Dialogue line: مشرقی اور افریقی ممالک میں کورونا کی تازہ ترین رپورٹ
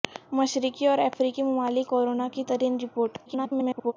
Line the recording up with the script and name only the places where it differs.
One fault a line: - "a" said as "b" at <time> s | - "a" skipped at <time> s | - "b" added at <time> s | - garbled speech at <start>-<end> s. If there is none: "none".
- "میں" skipped at 1.9 s
- "تازہ" skipped at 2.4 s
- garbled speech at 3.3-3.9 s